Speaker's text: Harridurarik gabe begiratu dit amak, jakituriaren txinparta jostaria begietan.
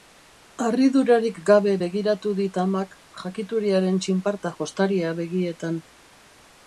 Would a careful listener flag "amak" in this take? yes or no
no